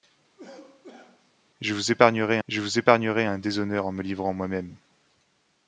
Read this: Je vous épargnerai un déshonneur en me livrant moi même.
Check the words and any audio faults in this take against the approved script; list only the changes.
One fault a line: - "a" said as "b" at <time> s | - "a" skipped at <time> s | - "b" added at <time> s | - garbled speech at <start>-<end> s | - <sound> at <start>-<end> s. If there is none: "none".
- cough at 0.4-1.3 s
- "je vous épargnerai" added at 2.5 s